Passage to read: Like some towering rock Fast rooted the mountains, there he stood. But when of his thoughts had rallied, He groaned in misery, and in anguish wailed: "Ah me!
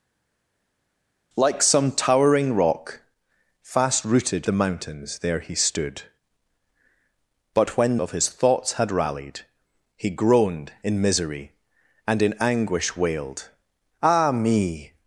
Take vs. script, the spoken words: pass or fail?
pass